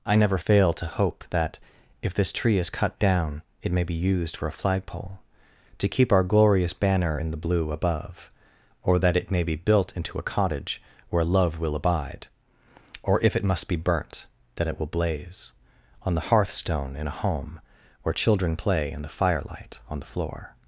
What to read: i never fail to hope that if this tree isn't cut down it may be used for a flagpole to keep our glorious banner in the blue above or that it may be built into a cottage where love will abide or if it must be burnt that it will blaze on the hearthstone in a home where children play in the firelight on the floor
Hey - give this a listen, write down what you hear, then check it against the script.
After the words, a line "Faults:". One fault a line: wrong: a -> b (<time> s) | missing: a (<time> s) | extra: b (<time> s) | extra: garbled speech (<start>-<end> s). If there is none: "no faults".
i never fail to hope that if this tree is cut down it may be used for a flagpole to keep our glorious banner in the blue above or that it may be built into a cottage where love will abide or if it must be burnt that it will blaze on the hearthstone in a home where children play in the firelight on the floor
Faults:
wrong: isn't -> is (2.6 s)